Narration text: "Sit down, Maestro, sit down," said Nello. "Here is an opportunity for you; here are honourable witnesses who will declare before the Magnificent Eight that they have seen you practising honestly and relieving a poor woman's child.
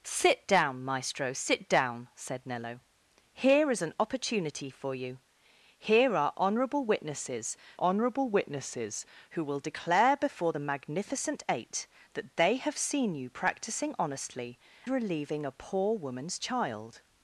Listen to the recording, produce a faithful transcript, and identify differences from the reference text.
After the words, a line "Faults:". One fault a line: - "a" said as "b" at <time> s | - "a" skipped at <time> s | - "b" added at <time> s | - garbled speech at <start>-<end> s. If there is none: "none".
"Sit down, Maestro, sit down," said Nello. "Here is an opportunity for you; here are honourable witnesses honourable witnesses who will declare before the Magnificent Eight that they have seen you practising honestly relieving a poor woman's child.
Faults:
- "honourable witnesses" added at 7.8 s
- "and" skipped at 14.6 s